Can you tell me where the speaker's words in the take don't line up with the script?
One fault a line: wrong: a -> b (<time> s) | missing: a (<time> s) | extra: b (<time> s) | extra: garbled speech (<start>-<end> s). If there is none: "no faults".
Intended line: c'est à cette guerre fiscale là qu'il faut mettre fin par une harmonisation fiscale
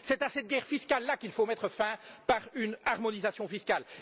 no faults